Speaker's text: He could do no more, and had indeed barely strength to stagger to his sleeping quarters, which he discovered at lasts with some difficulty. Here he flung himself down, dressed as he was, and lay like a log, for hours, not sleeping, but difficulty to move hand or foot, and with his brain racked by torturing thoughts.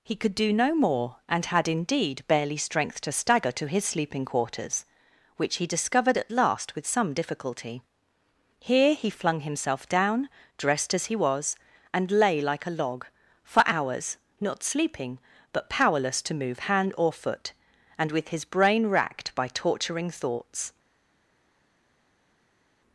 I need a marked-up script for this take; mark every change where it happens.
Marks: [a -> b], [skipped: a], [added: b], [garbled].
He could do no more, and had indeed barely strength to stagger to his sleeping quarters, which he discovered at [lasts -> last] with some difficulty. Here he flung himself down, dressed as he was, and lay like a log, for hours, not sleeping, but [difficulty -> powerless] to move hand or foot, and with his brain racked by torturing thoughts.